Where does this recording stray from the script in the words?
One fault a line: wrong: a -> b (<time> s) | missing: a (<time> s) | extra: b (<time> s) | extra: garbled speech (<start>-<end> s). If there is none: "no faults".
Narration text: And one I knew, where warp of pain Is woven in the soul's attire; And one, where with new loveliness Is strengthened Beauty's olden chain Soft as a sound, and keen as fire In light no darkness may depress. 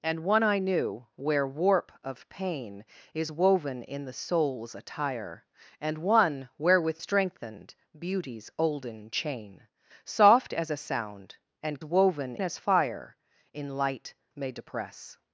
missing: new loveliness Is (7.0 s)
wrong: keen -> woven (11.8 s)
missing: no darkness (14.2 s)